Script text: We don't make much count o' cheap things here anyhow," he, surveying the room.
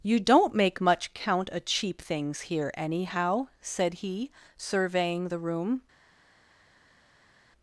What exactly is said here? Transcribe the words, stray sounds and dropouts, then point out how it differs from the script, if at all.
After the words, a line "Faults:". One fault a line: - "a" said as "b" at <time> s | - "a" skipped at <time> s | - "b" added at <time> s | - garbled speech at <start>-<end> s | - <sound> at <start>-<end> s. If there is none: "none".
You don't make much count o' cheap things here anyhow," said he, surveying the room.
Faults:
- "We" said as "You" at 0.0 s
- "said" added at 3.6 s